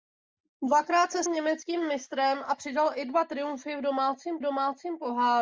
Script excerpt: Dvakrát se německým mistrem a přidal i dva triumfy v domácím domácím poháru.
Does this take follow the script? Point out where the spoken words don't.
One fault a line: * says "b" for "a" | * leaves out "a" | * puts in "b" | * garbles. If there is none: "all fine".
all fine